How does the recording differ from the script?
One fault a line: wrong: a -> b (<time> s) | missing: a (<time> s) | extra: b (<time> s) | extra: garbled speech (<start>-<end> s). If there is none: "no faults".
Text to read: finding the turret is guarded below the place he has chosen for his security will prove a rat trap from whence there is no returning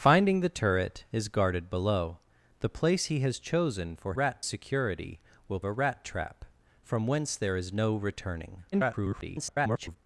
wrong: his -> rat (4.1 s)
missing: prove (5.6 s)
extra: garbled speech (8.7-10.0 s)